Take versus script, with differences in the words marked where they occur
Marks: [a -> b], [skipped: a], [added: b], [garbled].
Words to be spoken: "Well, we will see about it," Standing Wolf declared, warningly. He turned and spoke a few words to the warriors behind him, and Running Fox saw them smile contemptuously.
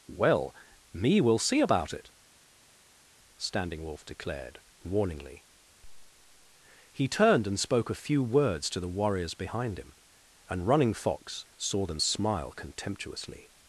"Well, [we -> me] will see about it," Standing Wolf declared, warningly. He turned and spoke a few words to the warriors behind him, and Running Fox saw them smile contemptuously.